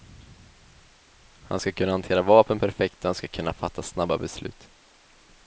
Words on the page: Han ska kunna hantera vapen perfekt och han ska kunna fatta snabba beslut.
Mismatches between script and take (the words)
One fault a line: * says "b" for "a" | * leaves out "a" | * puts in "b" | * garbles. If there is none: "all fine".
all fine